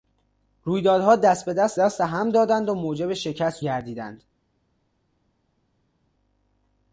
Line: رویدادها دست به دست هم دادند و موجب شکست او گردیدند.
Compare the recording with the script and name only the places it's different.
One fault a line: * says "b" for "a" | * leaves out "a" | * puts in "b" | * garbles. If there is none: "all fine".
* puts in "دست"
* leaves out "او"